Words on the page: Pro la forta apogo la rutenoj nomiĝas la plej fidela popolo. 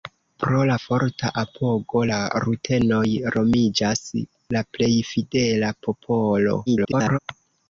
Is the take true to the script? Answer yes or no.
no